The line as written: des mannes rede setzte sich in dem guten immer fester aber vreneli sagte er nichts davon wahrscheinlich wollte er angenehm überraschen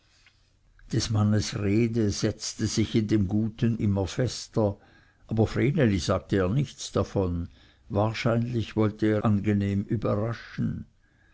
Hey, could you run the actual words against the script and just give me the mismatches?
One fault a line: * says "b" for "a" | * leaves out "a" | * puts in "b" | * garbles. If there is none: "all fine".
all fine